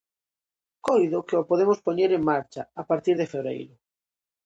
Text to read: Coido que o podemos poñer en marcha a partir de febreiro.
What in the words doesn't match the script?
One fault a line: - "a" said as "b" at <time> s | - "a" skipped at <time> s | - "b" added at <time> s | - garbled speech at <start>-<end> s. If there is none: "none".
none